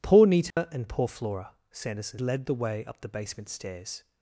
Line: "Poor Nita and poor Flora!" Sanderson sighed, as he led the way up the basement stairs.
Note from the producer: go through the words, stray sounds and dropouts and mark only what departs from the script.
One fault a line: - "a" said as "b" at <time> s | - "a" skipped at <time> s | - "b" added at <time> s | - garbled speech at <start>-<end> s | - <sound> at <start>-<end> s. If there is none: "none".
- dropout at 0.5-0.6 s
- "sighed as he" skipped at 2.2 s